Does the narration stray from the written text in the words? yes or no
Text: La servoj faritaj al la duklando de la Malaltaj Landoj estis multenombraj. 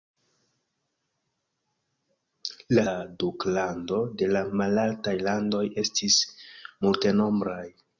yes